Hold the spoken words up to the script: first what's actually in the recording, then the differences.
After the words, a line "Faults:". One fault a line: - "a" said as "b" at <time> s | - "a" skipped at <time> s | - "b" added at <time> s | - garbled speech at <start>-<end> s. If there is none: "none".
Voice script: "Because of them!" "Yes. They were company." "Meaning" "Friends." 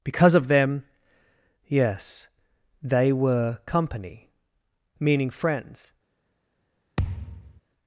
"Because of them!" "Yes. They were company." "Meaning" "Friends."
Faults:
none